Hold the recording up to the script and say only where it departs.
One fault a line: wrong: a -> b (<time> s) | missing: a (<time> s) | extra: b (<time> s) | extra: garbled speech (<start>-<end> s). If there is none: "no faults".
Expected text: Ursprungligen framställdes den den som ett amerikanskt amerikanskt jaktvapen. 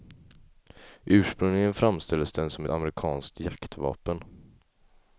missing: den (2.5 s)
missing: amerikanskt (3.4 s)